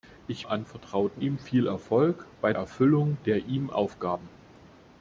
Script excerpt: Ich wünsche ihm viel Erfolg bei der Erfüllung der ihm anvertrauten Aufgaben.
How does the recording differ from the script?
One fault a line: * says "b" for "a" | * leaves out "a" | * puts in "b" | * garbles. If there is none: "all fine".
* says "anvertrauten" for "wünsche"
* leaves out "der"
* leaves out "anvertrauten"